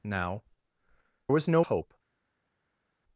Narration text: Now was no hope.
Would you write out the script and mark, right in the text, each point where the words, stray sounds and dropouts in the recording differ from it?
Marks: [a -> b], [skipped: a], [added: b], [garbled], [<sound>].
Now was no hope.